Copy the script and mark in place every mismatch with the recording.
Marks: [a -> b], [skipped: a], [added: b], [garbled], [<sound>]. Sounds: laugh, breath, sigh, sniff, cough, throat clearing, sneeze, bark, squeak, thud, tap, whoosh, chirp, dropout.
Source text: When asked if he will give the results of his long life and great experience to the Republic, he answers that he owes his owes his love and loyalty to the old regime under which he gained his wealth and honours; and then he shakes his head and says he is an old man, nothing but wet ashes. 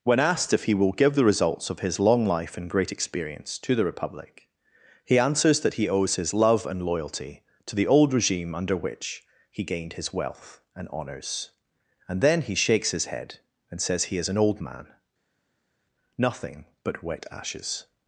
When asked if he will give the results of his long life and great experience to the Republic, he answers that he owes his [skipped: owes his] love and loyalty to the old regime under which he gained his wealth and honours; and then he shakes his head and says he is an old man, nothing but wet ashes.